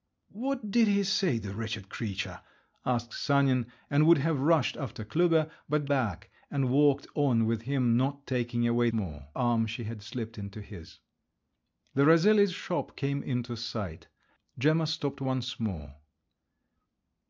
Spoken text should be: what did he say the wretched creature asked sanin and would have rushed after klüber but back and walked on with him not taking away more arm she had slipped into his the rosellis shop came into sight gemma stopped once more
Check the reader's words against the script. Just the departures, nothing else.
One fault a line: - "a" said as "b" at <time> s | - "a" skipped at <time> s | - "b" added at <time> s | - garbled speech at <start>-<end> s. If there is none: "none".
none